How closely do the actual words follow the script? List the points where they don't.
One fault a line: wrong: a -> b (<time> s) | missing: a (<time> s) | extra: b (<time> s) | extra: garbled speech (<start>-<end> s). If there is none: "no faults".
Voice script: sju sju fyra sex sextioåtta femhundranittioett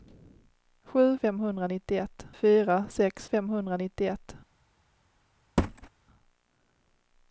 wrong: sju -> femhundranittioett (1.2 s)
missing: sextioåtta (3.3 s)